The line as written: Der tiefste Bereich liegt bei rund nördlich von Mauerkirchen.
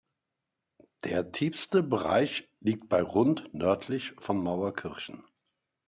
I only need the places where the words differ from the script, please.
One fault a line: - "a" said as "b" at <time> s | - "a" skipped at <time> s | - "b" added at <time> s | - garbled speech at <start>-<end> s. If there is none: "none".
none